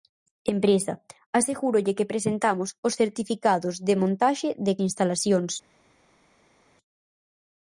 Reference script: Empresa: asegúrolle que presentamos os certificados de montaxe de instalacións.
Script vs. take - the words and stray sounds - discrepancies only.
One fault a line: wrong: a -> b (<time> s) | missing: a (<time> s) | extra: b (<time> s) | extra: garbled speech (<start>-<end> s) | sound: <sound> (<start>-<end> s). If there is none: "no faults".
no faults